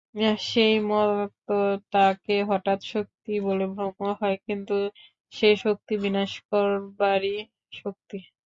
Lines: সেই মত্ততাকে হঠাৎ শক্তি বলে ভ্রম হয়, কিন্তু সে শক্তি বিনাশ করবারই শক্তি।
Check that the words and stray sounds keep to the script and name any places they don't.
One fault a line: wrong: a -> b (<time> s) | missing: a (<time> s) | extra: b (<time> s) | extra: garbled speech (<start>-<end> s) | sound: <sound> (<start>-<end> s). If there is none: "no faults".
no faults